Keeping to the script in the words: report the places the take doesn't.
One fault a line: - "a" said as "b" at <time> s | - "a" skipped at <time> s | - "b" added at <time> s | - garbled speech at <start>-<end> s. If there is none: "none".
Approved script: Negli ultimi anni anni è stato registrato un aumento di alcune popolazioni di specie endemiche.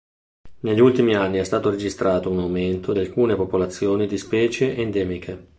- "anni" skipped at 1.4 s